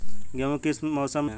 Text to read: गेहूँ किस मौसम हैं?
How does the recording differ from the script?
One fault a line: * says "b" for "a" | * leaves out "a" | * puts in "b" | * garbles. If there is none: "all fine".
all fine